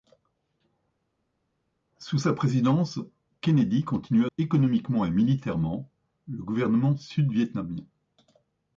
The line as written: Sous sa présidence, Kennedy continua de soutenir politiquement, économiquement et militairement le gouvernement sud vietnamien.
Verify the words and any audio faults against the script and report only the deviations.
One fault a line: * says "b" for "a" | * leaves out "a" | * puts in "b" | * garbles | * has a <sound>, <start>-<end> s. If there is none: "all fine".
* leaves out "de soutenir politiquement"